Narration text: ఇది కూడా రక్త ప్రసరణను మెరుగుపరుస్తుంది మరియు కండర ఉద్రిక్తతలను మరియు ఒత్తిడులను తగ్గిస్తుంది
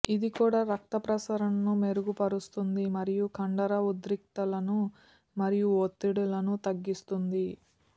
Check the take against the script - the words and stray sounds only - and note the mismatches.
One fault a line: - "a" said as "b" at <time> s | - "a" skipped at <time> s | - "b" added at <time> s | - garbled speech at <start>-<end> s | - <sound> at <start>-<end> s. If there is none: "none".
none